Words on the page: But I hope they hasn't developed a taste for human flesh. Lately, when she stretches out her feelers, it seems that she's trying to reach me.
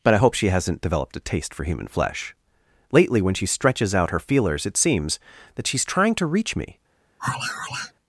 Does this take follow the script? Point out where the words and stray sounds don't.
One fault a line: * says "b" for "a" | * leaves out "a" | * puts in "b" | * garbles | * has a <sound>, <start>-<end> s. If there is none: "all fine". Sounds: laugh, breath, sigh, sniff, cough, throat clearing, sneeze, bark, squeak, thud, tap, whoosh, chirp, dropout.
* says "she" for "they"
* has a sigh, 7.2-7.9 s